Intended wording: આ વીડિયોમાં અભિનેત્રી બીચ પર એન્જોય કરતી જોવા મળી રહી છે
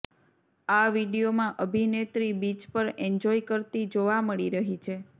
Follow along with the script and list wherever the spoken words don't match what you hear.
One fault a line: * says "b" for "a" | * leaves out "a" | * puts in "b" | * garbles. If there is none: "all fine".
all fine